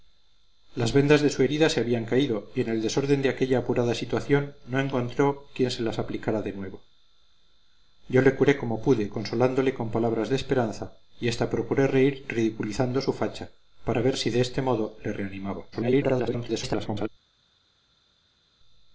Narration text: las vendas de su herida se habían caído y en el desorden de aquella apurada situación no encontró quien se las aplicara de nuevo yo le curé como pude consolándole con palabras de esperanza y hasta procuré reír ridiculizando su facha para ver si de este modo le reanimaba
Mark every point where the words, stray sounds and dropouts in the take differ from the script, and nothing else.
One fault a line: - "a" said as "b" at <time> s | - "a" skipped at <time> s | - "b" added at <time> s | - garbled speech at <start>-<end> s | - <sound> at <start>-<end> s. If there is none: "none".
- garbled speech at 15.7-17.1 s